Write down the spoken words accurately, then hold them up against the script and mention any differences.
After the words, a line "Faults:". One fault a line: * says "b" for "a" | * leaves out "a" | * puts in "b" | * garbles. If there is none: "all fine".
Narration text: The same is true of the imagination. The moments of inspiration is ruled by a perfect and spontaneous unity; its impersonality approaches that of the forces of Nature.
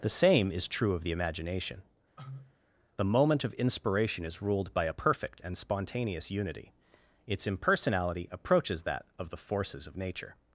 The same is true of the imagination. The moment of inspiration is ruled by a perfect and spontaneous unity; its impersonality approaches that of the forces of Nature.
Faults:
* says "moment" for "moments"